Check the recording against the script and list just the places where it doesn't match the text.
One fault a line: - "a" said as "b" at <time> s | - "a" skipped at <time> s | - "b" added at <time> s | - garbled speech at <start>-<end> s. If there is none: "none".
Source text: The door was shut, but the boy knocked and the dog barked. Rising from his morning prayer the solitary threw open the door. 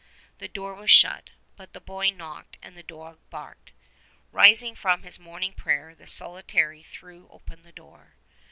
none